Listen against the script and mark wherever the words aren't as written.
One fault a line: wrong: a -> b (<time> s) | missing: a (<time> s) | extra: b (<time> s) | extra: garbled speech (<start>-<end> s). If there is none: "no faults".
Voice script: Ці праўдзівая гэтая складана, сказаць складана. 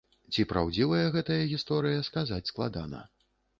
wrong: складана -> гісторыя (1.5 s)